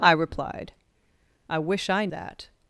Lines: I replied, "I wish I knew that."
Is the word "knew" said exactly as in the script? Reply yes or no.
no